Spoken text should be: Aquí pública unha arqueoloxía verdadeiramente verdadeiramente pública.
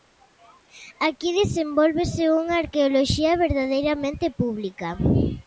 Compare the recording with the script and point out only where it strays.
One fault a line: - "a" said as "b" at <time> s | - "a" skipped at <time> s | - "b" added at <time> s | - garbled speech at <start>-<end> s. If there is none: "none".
- "pública" said as "desenvólvese" at 1.4 s
- "verdadeiramente" skipped at 4.2 s